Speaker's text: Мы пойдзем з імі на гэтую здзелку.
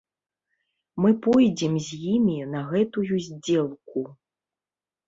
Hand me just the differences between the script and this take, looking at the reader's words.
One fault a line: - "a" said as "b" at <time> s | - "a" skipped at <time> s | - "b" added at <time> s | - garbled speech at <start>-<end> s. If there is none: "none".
none